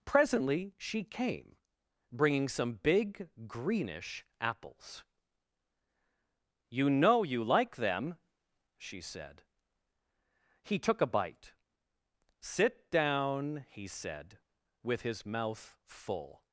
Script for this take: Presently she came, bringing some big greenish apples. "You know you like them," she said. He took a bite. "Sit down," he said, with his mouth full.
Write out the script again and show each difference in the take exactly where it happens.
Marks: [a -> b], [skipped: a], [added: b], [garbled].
Presently she came, bringing some big greenish apples. "You know you like them," she said. He took a bite. "Sit down," he said, with his mouth full.